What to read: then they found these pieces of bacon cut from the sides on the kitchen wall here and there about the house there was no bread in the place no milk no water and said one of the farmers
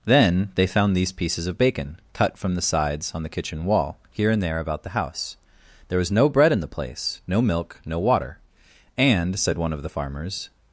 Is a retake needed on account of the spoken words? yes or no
no